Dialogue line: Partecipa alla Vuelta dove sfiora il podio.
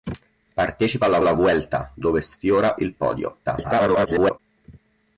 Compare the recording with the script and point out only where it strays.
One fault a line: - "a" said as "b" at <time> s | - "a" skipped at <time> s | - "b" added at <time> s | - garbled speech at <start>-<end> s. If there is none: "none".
- "alla" added at 1.2 s
- garbled speech at 3.4-4.4 s